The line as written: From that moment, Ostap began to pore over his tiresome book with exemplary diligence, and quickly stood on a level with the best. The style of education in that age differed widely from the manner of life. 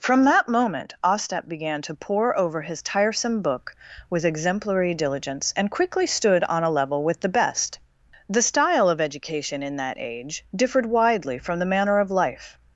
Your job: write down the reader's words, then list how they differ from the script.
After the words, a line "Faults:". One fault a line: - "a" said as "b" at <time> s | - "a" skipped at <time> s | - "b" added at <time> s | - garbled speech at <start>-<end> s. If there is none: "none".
From that moment, Ostap began to pore over his tiresome book with exemplary diligence, and quickly stood on a level with the best. The style of education in that age differed widely from the manner of life.
Faults:
none